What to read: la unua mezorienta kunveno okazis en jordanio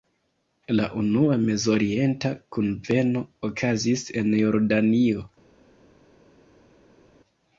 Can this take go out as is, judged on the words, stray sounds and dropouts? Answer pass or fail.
pass